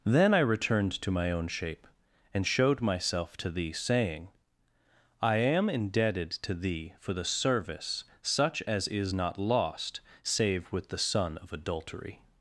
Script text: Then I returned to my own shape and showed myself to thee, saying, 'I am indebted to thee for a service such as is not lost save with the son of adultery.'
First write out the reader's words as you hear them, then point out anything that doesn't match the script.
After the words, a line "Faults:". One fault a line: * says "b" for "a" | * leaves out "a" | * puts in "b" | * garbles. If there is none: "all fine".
Then I returned to my own shape and showed myself to thee, saying, 'I am indebted to thee for the service such as is not lost save with the son of adultery.'
Faults:
* says "the" for "a"